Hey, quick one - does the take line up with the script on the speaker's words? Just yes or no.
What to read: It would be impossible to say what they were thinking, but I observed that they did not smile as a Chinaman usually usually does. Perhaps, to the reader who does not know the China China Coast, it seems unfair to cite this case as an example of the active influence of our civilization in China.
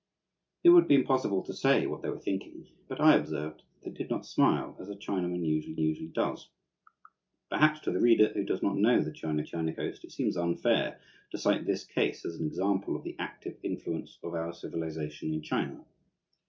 yes